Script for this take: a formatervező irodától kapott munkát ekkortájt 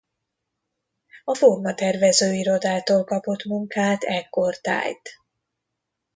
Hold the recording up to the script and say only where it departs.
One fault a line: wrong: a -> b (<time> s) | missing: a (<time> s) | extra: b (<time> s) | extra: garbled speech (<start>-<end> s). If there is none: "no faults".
no faults